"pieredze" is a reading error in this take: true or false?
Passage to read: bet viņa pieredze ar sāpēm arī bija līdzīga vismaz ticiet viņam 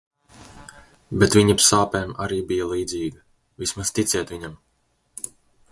true